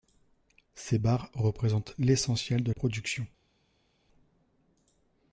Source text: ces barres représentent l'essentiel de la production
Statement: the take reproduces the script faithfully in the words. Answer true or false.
false